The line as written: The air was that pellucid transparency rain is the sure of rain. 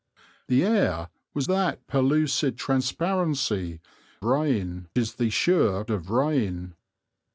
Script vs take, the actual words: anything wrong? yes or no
no